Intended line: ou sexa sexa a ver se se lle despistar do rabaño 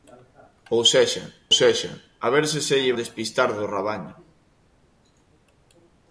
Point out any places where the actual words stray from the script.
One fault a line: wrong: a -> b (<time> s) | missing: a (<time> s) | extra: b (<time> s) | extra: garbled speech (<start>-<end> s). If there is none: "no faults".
no faults